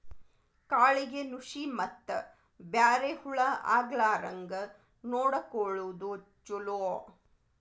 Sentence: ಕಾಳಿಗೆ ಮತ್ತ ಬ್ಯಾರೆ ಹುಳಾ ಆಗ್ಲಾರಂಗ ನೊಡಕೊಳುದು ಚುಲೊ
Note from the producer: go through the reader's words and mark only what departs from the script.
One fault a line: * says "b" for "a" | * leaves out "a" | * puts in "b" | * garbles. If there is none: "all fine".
* puts in "ನುಶಿ"